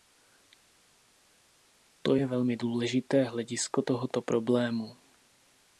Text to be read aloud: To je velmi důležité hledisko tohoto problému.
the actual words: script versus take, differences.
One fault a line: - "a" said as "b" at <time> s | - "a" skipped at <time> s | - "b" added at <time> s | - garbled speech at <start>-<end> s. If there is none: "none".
none